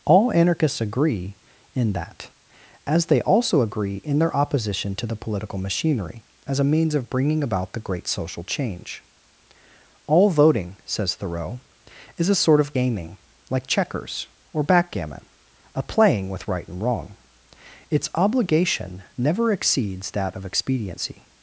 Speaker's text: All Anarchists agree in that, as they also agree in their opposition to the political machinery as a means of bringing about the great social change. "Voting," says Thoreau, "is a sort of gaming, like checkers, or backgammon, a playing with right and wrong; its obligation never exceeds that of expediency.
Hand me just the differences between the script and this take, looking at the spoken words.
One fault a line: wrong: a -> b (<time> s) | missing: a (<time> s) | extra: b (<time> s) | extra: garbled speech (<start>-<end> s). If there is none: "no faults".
extra: All (10.1 s)